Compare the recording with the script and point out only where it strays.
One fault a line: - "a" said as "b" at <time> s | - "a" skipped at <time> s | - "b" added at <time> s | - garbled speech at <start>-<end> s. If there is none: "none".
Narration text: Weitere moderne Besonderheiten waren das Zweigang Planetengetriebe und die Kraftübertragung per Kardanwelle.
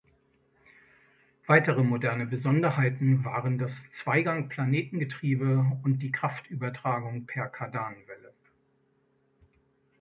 none